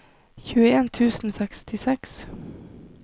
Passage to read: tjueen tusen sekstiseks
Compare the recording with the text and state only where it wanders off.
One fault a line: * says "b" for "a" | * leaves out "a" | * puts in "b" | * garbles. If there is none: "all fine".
all fine